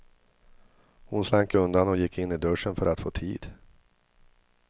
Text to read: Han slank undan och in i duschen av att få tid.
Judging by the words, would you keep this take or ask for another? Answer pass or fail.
fail